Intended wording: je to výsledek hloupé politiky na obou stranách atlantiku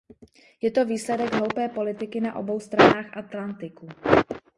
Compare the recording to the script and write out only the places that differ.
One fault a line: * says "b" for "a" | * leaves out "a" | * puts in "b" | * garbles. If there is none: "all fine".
all fine